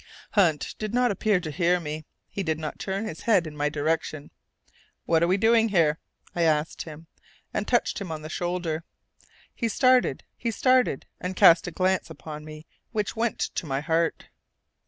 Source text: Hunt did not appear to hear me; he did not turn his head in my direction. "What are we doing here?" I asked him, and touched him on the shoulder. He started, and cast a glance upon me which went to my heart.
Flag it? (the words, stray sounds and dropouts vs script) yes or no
yes